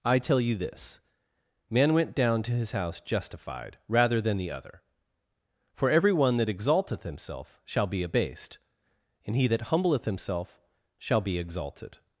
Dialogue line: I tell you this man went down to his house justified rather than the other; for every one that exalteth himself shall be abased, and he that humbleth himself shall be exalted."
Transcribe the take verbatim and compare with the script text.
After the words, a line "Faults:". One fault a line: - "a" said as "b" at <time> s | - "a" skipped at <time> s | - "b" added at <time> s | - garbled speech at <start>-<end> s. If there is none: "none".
I tell you this man went down to his house justified rather than the other; for every one that exalteth himself shall be abased, and he that humbleth himself shall be exalted."
Faults:
none